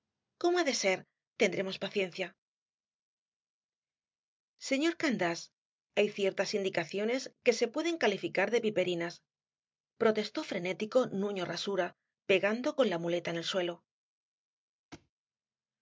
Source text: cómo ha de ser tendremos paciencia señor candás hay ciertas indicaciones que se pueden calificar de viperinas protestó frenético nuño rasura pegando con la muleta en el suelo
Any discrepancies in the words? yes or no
no